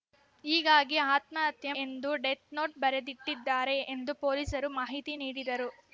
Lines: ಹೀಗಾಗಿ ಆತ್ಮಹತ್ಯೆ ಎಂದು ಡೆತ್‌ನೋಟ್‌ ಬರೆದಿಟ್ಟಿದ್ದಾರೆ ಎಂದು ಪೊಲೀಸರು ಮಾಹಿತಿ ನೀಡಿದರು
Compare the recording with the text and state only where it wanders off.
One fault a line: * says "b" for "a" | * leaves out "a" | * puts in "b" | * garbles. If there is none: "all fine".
all fine